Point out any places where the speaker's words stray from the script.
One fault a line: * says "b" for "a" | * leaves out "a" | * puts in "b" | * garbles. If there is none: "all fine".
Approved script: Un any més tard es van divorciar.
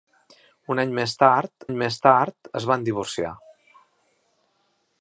* puts in "any més tard"